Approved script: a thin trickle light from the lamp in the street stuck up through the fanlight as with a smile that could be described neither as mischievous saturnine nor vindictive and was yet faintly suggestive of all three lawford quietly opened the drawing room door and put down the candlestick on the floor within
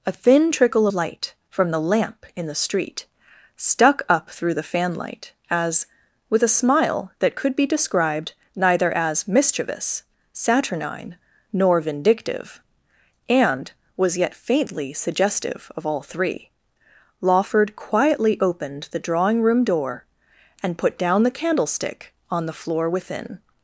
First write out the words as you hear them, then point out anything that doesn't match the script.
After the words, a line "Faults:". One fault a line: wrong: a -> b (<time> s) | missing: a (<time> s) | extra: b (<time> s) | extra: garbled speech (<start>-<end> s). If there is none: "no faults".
a thin trickle light from the lamp in the street stuck up through the fanlight as with a smile that could be described neither as mischievous saturnine nor vindictive and was yet faintly suggestive of all three lawford quietly opened the drawing room door and put down the candlestick on the floor within
Faults:
no faults